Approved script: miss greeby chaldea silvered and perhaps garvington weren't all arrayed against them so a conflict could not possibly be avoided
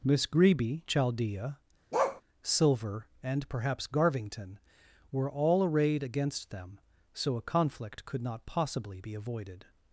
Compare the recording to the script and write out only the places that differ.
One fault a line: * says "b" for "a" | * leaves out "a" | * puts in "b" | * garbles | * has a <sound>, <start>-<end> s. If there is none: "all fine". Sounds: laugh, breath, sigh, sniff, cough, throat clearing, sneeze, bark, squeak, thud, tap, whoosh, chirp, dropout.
* has a bark, 1.9-2.2 s
* says "silver" for "silvered"
* says "were" for "weren't"